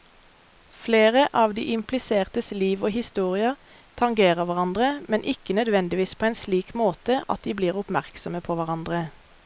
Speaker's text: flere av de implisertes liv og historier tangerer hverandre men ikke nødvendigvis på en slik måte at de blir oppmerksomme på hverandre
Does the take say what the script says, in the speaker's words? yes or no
yes